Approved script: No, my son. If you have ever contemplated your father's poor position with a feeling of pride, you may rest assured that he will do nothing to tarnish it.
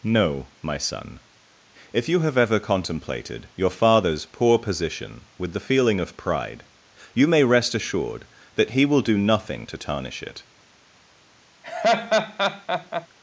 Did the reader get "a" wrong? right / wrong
wrong